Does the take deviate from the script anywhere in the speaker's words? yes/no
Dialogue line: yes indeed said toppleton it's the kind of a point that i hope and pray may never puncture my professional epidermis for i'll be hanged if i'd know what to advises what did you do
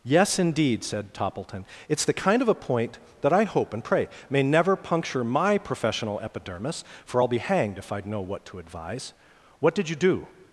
yes